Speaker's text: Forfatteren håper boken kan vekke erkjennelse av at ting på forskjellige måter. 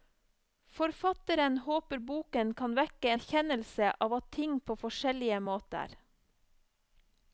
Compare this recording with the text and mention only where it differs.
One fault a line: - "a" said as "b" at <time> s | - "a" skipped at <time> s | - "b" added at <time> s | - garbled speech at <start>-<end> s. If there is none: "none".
none